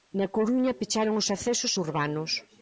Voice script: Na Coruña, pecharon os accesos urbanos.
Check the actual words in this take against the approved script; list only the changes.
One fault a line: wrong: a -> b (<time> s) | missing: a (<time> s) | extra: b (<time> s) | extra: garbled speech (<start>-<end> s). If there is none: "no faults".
no faults